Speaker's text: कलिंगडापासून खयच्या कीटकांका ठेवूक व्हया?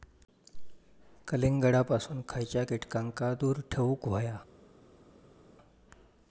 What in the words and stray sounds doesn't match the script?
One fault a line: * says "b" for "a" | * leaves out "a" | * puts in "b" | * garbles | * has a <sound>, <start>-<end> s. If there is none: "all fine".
* puts in "दूर"